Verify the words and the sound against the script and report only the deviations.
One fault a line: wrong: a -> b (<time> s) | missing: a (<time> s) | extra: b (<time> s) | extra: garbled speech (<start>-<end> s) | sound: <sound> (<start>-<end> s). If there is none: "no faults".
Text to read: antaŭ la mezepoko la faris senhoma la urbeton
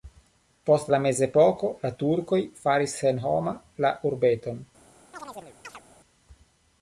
wrong: antaŭ -> post (0.7 s)
extra: turkoj (2.0 s)
sound: chirp (5.1-5.8 s)